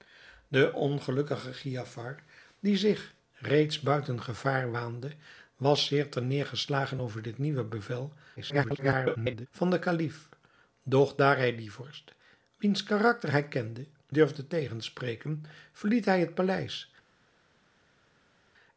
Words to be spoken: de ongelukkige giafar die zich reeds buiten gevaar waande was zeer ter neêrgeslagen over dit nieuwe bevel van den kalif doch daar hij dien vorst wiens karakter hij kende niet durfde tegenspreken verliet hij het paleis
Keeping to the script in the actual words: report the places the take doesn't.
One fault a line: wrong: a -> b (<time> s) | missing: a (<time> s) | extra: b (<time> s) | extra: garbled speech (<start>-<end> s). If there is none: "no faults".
extra: garbled speech (8.4-9.5 s)
missing: niet (13.9 s)